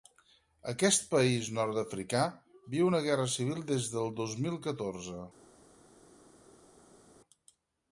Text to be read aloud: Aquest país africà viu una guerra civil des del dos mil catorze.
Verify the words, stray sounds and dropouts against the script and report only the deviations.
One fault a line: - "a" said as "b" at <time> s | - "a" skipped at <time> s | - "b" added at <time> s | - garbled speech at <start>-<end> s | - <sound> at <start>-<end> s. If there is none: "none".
- "nord" added at 1.6 s